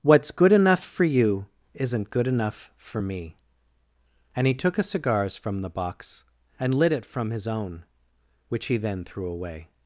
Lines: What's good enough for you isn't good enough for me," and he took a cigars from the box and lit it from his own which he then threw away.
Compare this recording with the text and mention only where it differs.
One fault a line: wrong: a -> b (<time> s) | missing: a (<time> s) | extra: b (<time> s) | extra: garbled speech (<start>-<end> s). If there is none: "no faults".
no faults